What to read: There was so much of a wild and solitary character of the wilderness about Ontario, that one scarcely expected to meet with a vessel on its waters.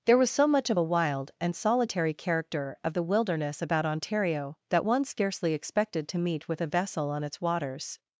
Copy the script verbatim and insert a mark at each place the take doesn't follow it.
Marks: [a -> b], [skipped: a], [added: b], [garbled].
There was so much of a wild and solitary character of the wilderness about Ontario, that one scarcely expected to meet with a vessel on its waters.